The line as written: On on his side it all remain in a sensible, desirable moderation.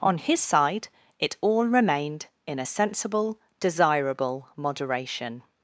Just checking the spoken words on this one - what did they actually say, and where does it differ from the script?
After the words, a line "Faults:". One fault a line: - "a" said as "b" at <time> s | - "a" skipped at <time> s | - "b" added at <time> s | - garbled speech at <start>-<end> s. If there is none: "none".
On his side it all remained in a sensible, desirable moderation.
Faults:
- "on" skipped at 0.2 s
- "remain" said as "remained" at 1.7 s